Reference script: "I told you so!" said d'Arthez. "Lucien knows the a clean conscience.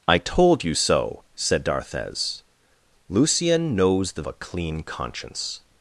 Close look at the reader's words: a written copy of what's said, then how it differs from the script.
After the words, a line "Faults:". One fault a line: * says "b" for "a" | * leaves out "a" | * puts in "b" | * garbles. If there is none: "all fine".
"I told you so!" said d'Arthez. "Lucien knows the a clean conscience.
Faults:
all fine